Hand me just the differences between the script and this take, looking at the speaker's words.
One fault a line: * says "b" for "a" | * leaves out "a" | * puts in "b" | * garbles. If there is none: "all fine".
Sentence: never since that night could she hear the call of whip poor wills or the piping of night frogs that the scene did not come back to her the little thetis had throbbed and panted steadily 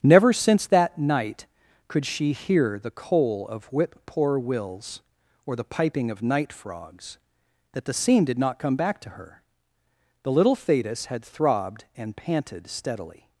* says "coal" for "call"